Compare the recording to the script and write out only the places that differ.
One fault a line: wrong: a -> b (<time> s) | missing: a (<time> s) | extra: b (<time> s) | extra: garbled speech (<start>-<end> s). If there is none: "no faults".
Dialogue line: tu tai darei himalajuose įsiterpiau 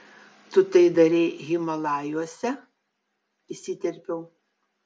no faults